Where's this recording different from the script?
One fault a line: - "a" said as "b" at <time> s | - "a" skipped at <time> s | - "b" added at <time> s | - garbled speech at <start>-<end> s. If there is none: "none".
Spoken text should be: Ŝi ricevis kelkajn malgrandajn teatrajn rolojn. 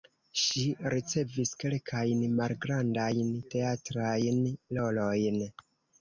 none